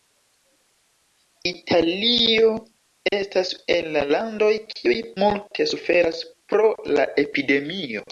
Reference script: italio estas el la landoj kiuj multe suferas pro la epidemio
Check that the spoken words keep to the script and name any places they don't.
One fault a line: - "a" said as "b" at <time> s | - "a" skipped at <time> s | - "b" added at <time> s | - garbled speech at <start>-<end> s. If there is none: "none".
none